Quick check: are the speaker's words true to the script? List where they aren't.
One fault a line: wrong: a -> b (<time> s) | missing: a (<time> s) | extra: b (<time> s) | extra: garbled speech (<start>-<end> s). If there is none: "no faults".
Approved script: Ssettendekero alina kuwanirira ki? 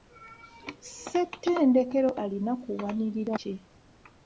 no faults